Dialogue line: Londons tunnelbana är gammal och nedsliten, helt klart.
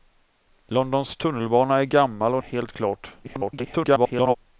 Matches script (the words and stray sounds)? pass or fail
fail